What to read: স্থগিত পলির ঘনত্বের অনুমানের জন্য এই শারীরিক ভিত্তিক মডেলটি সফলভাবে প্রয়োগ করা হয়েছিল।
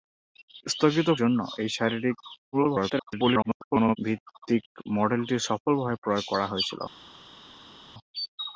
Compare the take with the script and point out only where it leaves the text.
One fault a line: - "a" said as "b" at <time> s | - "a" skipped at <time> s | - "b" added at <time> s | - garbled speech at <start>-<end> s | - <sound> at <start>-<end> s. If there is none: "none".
- "পলির ঘনত্বের অনুমানের" skipped at 1.1 s
- garbled speech at 2.5-4.0 s